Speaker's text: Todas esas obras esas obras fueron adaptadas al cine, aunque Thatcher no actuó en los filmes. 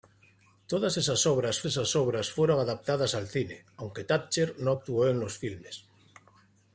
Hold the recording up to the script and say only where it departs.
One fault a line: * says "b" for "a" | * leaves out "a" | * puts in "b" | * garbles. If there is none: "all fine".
all fine